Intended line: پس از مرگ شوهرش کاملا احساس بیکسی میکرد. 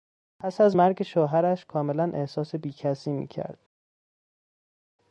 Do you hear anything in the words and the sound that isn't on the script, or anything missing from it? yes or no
no